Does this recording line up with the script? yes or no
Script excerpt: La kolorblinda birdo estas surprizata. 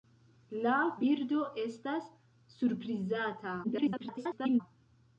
no